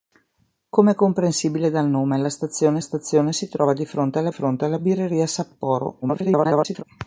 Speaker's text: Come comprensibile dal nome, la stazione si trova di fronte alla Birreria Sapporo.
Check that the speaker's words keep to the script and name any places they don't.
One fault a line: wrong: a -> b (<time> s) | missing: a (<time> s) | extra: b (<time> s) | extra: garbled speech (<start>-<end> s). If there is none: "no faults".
extra: stazione (2.8 s)
extra: fronte alla (4.3 s)
extra: garbled speech (6.0-6.8 s)